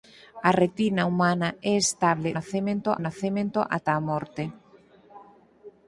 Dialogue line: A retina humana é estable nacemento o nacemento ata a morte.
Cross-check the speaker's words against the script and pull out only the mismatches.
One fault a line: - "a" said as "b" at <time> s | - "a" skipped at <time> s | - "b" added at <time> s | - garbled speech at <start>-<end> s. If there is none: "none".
none